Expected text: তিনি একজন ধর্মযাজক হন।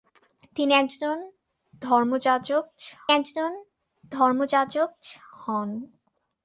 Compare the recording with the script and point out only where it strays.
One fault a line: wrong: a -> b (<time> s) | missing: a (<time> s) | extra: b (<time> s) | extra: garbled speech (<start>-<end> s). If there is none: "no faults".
extra: একজন ধর্মযাজক (3.1 s)